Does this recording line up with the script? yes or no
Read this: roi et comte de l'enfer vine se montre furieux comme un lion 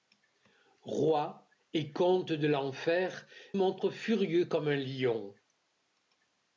no